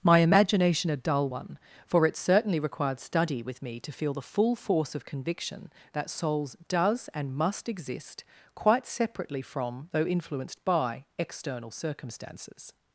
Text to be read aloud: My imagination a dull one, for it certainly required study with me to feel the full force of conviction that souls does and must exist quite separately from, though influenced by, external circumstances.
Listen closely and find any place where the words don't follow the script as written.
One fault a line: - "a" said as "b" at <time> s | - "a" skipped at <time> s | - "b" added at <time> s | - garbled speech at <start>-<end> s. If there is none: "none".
none